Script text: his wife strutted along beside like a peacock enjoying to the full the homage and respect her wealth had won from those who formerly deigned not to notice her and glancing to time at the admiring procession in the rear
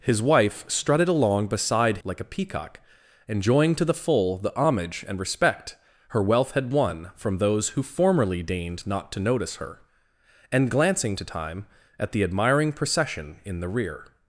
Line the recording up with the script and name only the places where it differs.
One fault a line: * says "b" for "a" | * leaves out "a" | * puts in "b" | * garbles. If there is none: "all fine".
all fine